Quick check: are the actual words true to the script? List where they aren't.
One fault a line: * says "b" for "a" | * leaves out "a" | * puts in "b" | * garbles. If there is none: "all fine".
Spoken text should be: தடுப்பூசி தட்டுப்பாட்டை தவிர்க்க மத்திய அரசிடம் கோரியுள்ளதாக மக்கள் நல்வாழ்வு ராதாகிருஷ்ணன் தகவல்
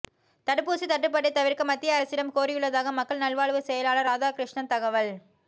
* puts in "செயலாளர்"